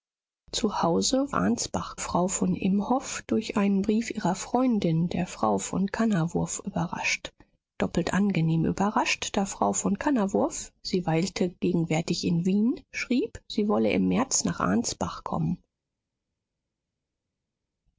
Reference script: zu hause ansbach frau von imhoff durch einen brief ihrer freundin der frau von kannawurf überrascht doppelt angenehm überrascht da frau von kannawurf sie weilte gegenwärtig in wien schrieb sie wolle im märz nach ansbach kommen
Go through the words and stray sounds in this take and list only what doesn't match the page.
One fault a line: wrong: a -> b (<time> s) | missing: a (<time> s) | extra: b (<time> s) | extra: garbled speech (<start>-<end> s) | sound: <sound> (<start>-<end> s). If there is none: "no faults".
no faults